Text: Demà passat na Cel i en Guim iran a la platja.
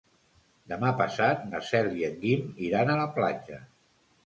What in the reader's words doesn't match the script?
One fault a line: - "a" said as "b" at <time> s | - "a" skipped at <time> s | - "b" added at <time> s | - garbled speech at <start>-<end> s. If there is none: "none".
none